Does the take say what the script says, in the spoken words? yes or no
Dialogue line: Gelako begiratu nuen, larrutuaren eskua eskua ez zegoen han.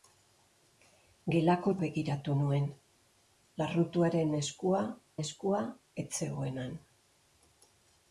yes